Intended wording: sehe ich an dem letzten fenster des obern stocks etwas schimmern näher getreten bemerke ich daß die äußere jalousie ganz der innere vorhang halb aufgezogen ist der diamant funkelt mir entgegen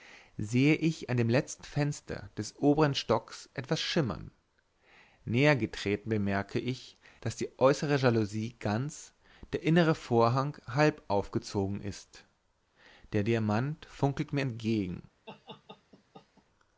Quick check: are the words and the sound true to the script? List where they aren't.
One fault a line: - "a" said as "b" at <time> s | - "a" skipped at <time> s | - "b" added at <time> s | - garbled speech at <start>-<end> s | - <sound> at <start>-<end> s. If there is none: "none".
- laugh at 15.3-16.4 s